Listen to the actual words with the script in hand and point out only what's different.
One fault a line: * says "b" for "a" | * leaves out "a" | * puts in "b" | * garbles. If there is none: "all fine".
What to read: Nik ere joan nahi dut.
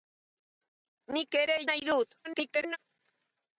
* leaves out "joan"
* garbles